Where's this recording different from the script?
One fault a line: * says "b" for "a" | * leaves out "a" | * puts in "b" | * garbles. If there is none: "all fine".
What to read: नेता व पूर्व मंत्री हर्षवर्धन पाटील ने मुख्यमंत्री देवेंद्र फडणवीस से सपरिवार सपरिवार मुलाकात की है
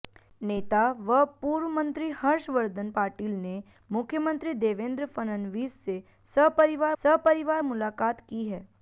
all fine